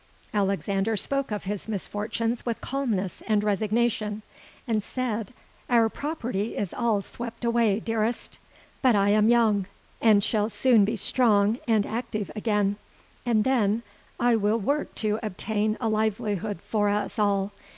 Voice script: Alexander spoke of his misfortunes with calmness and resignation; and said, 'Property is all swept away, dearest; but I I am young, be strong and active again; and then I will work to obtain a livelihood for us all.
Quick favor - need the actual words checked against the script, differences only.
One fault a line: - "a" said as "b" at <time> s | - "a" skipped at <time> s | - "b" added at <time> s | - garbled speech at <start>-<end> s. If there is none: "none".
- "Our" added at 5.7 s
- "I" skipped at 9.1 s
- "and shall soon" added at 10.0 s